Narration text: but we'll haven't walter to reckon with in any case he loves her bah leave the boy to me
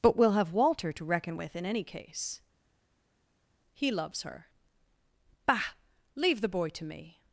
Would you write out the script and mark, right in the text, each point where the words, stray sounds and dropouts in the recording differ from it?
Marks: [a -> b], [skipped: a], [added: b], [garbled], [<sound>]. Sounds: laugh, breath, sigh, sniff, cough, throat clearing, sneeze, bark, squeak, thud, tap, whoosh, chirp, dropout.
but we'll [haven't -> have] walter to reckon with in any case he loves her bah leave the boy to me